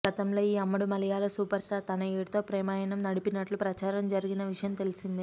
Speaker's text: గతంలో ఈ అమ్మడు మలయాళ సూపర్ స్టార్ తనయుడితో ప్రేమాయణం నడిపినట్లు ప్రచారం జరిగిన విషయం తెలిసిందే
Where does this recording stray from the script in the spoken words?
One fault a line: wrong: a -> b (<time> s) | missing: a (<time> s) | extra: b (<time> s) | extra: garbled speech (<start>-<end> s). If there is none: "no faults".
no faults